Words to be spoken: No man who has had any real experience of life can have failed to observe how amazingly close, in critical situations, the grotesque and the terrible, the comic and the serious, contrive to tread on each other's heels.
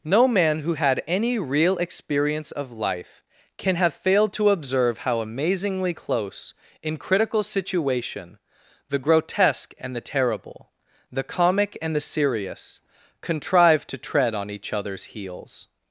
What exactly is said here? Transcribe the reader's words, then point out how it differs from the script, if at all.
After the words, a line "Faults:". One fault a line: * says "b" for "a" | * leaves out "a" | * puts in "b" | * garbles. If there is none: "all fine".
No man who had any real experience of life can have failed to observe how amazingly close, in critical situation, the grotesque and the terrible, the comic and the serious, contrive to tread on each other's heels.
Faults:
* leaves out "has"
* says "situation" for "situations"